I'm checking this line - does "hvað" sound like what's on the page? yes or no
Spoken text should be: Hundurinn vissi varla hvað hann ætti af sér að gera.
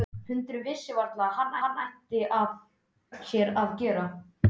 yes